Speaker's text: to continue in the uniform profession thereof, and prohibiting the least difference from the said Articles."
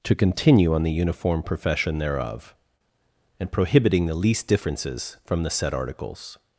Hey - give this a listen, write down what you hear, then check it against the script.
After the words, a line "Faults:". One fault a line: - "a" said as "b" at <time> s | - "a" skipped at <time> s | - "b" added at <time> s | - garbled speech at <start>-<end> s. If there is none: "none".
to continue on the uniform profession thereof, and prohibiting the least differences from the said Articles."
Faults:
- "in" said as "on" at 0.7 s
- "difference" said as "differences" at 4.5 s